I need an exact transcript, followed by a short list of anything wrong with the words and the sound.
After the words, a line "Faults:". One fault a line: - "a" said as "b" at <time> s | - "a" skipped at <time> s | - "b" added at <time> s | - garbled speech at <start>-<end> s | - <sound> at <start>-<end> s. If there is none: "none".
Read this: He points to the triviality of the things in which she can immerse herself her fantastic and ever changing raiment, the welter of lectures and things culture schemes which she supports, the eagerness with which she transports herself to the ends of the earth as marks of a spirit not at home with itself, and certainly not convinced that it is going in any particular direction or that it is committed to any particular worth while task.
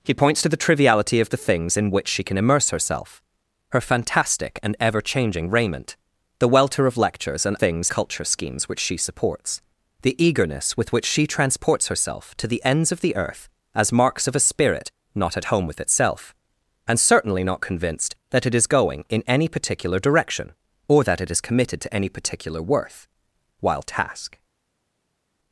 He points to the triviality of the things in which she can immerse herself her fantastic and ever changing raiment, the welter of lectures and things culture schemes which she supports, the eagerness with which she transports herself to the ends of the earth as marks of a spirit not at home with itself, and certainly not convinced that it is going in any particular direction or that it is committed to any particular worth while task.
Faults:
none